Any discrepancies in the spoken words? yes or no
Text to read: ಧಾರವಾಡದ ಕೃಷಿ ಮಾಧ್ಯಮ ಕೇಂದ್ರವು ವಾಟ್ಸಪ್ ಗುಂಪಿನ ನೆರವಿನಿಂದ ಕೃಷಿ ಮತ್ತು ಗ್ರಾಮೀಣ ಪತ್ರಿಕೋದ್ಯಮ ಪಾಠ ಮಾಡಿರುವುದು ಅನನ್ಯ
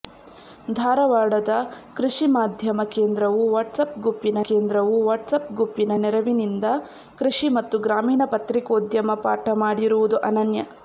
yes